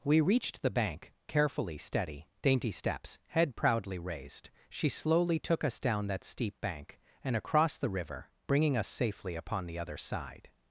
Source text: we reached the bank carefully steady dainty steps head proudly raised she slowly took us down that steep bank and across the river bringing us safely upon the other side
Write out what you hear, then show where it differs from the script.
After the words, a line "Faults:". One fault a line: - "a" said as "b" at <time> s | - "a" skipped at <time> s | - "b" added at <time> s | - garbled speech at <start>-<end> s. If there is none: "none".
we reached the bank carefully steady dainty steps head proudly raised she slowly took us down that steep bank and across the river bringing us safely upon the other side
Faults:
none